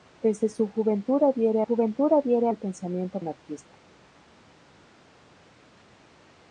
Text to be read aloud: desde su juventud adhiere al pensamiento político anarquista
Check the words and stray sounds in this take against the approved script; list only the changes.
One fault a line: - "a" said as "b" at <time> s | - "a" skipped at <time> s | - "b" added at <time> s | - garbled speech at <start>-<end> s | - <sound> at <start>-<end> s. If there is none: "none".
- "juventud adhiere" added at 1.6 s
- "político" skipped at 3.2 s